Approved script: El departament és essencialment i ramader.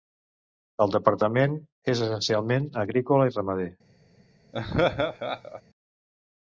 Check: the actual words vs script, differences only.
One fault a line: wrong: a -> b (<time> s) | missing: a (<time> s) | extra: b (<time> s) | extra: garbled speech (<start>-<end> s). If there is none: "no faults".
extra: agrícola (2.9 s)